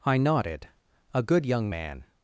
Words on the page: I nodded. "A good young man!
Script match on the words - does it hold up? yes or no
yes